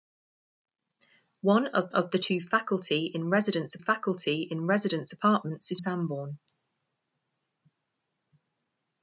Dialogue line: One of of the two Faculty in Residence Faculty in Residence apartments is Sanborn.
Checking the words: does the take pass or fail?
pass